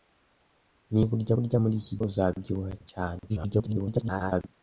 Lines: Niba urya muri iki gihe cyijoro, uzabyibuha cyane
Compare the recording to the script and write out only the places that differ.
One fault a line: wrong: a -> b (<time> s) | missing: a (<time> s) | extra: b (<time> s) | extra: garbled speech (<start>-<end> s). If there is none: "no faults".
extra: urya (1.4 s)
missing: gihe cyijoro (2.0 s)
extra: garbled speech (3.3-4.5 s)